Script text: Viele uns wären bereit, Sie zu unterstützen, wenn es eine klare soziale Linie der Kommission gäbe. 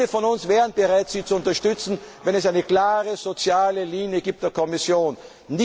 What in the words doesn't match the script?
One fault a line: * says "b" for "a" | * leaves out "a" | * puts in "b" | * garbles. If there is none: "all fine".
* puts in "von"